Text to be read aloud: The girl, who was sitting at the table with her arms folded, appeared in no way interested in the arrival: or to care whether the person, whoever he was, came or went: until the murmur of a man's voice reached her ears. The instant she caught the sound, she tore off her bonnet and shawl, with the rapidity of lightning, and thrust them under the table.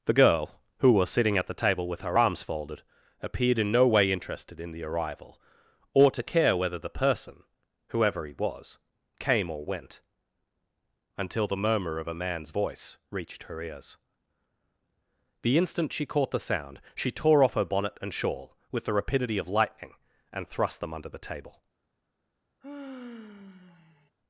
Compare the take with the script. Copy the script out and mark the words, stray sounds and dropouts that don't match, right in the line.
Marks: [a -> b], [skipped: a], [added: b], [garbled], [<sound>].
The girl, who was sitting at the table with her arms folded, appeared in no way interested in the arrival: or to care whether the person, whoever he was, came or went: until the murmur of a man's voice reached her ears. The instant she caught the sound, she tore off her bonnet and shawl, with the rapidity of lightning, and thrust them under the table. [sigh]